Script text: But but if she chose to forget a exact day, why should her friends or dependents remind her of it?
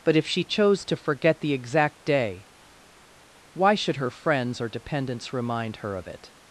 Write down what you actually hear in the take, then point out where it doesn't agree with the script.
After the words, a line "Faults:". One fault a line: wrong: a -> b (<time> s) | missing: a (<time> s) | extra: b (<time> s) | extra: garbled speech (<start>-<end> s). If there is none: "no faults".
But if she chose to forget the exact day, why should her friends or dependents remind her of it?
Faults:
missing: but (0.1 s)
wrong: a -> the (1.4 s)